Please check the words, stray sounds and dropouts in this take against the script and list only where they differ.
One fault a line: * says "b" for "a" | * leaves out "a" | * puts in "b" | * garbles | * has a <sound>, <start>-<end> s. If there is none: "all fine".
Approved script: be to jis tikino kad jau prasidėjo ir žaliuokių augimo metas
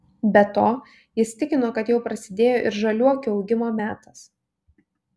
all fine